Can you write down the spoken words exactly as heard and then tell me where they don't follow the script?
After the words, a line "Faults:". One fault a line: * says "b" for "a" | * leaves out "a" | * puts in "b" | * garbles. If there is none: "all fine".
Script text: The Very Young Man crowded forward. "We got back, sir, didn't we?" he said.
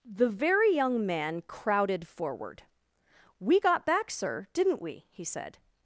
The Very Young Man crowded forward. "We got back, sir, didn't we?" he said.
Faults:
all fine